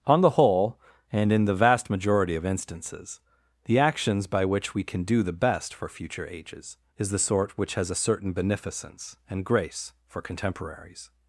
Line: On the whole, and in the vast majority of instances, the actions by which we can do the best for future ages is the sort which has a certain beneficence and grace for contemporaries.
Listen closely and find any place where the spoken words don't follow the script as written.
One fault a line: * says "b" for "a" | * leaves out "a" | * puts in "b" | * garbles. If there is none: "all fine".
all fine